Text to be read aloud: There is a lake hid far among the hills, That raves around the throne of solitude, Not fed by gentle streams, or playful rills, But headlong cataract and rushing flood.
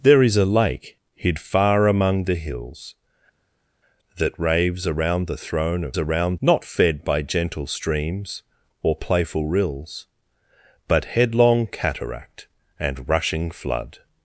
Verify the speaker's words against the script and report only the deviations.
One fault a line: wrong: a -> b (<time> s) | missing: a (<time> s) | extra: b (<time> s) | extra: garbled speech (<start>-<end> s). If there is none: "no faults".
wrong: solitude -> around (6.0 s)